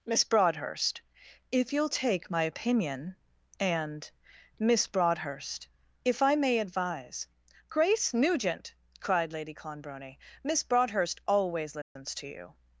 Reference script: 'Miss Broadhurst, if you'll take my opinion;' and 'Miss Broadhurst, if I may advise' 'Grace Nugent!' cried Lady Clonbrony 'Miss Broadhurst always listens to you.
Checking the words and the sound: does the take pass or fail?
fail